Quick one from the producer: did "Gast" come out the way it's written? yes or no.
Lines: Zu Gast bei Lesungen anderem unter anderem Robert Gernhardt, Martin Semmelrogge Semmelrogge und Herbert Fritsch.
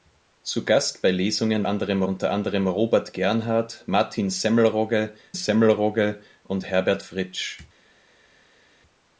yes